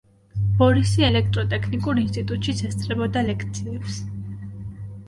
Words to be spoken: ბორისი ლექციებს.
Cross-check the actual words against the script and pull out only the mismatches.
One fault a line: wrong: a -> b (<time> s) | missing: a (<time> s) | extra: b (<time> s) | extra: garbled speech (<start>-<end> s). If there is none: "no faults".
extra: ელექტროტექნიკურ ინსტიტუტშიც ესწრებოდა (1.0 s)